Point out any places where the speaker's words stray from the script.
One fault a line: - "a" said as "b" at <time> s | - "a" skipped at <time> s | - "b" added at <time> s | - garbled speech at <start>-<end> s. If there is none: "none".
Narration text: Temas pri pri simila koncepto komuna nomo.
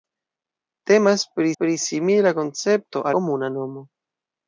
none